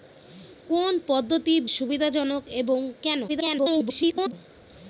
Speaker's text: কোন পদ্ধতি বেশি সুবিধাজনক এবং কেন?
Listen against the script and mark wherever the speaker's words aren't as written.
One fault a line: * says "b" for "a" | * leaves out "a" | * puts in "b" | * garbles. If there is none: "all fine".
* leaves out "বেশি"
* garbles